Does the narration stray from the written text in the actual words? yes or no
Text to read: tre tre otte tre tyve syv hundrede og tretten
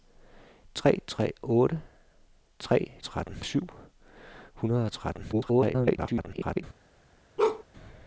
yes